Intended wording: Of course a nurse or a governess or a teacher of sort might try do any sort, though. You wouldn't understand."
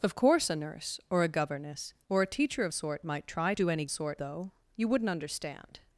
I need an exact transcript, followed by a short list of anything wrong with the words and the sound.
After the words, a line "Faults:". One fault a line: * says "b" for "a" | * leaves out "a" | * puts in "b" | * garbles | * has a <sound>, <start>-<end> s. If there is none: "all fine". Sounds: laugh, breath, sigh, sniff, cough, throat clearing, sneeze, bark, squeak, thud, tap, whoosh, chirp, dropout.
Of course a nurse or a governess or a teacher of sort might try do any sort, though. You wouldn't understand."
Faults:
all fine